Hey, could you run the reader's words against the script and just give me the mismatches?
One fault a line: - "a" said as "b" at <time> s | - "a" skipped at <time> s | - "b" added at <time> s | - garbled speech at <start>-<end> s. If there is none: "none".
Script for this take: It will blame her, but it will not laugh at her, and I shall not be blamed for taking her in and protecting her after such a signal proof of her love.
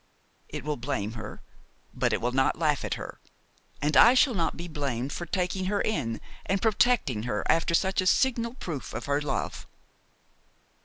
none